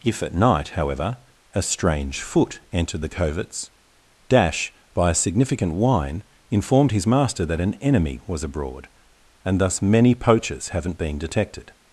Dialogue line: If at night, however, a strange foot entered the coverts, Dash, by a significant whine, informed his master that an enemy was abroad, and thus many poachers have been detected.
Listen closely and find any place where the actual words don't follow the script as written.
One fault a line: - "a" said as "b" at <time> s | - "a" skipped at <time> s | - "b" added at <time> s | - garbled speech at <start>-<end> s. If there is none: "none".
- "have" said as "haven't" at 10.7 s